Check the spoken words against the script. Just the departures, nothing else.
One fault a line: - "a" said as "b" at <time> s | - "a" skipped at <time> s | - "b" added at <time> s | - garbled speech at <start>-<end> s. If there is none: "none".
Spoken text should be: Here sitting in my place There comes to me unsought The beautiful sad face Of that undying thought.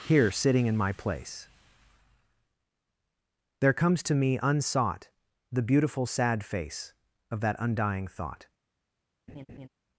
none